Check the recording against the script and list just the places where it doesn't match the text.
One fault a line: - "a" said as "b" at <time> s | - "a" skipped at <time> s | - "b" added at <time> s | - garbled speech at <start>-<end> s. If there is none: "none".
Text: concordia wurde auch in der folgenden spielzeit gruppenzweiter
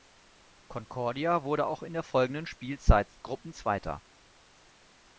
none